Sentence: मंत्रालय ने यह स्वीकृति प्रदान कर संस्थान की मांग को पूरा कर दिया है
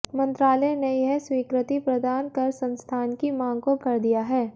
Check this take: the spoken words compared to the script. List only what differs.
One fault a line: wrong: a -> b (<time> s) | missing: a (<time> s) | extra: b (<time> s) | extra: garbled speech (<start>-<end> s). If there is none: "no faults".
missing: पूरा (3.8 s)